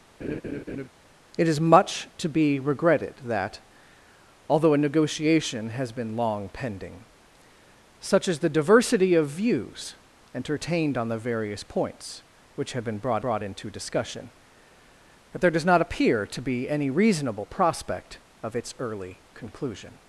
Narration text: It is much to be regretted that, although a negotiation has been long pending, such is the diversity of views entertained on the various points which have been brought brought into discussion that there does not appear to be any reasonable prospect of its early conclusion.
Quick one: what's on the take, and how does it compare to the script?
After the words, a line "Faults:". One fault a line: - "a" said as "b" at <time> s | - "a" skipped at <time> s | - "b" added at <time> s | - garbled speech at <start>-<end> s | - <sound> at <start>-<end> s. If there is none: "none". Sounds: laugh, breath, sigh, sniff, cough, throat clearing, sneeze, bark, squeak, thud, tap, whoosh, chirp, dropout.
It is much to be regretted that, although a negotiation has been long pending, such is the diversity of views entertained on the various points which have been brought brought into discussion that there does not appear to be any reasonable prospect of its early conclusion.
Faults:
- laugh at 0.2-0.9 s